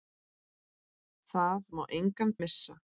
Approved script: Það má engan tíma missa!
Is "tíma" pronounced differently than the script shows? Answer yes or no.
yes